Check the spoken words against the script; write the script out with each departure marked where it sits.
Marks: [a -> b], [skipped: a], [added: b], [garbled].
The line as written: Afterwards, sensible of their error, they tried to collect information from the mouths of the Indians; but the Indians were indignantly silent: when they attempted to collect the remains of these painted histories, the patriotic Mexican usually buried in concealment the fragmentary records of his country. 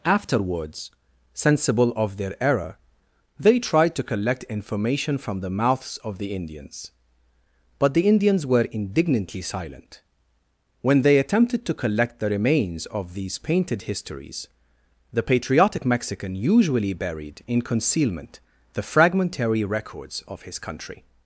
Afterwards, sensible of their error, they tried to collect information from the mouths of the Indians; but the Indians were indignantly silent: when they attempted to collect the remains of these painted histories, the patriotic Mexican usually buried in concealment the fragmentary records of his country.